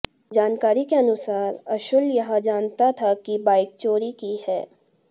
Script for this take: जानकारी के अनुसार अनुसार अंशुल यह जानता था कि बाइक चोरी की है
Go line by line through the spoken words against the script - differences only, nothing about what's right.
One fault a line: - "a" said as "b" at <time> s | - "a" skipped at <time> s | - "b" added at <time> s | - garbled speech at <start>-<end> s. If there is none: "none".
- "अनुसार" skipped at 1.6 s